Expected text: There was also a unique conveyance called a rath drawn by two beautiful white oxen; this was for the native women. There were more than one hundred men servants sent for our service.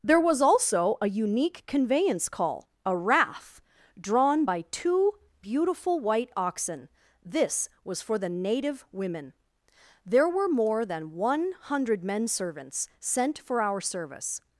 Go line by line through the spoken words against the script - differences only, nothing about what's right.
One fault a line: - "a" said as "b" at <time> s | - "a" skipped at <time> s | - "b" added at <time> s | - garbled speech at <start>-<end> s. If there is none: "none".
- "called" said as "call" at 2.3 s